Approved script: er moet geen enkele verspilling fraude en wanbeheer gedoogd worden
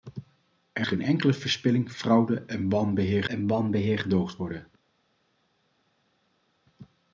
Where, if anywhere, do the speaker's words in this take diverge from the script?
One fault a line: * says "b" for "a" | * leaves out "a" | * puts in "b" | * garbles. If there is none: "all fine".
* leaves out "moet"
* puts in "en wanbeheer"